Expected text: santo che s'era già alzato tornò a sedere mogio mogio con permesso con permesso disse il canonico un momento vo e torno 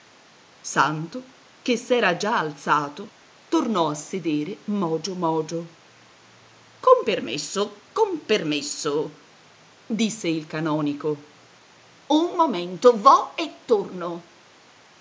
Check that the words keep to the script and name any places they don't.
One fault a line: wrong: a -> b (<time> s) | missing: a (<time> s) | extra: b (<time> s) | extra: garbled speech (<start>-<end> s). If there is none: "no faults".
no faults